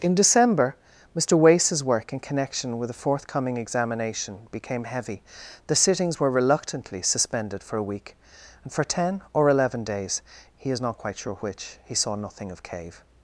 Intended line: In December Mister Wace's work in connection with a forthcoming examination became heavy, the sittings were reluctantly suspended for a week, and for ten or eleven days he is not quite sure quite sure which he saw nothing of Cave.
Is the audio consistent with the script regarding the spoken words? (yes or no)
no